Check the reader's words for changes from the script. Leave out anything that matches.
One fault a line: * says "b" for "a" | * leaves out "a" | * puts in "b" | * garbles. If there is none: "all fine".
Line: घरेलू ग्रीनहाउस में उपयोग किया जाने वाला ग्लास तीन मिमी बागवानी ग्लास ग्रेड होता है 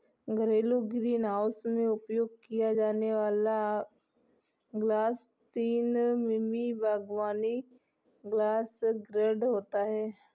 all fine